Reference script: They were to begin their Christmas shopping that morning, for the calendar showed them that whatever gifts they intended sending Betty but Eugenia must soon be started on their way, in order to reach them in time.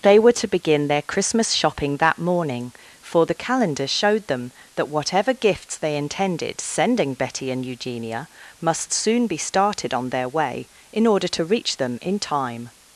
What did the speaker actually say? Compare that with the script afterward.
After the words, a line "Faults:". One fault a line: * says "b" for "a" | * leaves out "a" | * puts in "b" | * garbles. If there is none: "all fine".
They were to begin their Christmas shopping that morning, for the calendar showed them that whatever gifts they intended sending Betty and Eugenia must soon be started on their way, in order to reach them in time.
Faults:
* says "and" for "but"